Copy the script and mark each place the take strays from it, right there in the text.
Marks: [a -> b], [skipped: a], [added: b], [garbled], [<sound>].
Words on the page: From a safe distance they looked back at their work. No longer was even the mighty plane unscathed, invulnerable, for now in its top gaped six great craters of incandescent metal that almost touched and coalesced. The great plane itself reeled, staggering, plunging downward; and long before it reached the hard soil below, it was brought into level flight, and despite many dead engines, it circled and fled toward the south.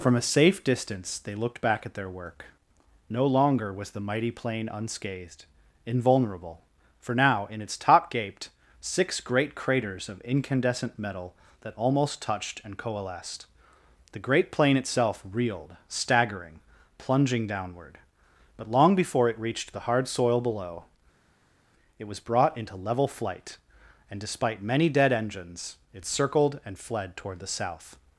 From a safe distance they looked back at their work. No longer was [skipped: even] the mighty plane unscathed, invulnerable, for now in its top gaped six great craters of incandescent metal that almost touched and coalesced. The great plane itself reeled, staggering, plunging downward; [and -> but] long before it reached the hard soil below, it was brought into level flight, and despite many dead engines, it circled and fled toward the south.